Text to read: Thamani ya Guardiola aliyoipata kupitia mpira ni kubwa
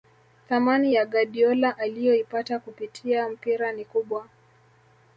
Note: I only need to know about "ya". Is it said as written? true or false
true